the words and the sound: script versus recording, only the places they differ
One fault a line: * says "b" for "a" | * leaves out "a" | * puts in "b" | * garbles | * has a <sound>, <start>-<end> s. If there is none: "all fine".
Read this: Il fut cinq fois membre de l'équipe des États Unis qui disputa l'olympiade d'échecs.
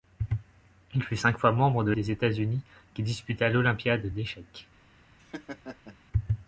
* leaves out "l'équipe"
* has a laugh, 5.2-6.0 s